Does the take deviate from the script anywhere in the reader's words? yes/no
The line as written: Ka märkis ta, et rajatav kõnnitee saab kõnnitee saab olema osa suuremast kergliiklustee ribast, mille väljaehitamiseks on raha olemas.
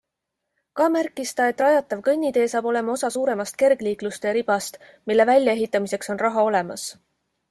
yes